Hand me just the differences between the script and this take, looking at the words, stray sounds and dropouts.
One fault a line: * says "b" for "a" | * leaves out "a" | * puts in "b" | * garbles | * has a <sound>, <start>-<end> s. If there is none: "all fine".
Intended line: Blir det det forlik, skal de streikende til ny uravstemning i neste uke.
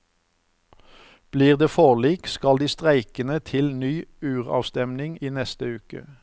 * leaves out "det"